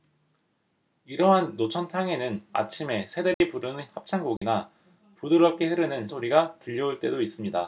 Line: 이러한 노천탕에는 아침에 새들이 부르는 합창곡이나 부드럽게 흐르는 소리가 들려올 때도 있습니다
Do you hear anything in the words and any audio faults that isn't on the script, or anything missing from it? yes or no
yes